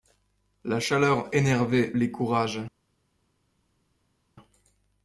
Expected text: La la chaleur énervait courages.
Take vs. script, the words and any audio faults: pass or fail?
fail